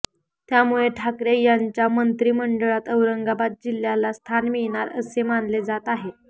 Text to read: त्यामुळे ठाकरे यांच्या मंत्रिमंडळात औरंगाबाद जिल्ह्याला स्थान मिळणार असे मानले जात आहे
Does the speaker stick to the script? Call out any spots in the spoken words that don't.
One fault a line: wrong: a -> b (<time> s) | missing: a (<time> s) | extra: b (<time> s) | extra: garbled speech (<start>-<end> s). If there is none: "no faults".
no faults